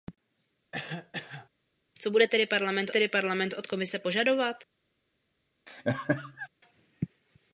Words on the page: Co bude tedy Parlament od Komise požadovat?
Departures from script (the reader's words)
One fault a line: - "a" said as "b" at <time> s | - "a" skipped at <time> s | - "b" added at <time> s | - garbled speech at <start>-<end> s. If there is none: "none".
- "tedy Parlament" added at 2.9 s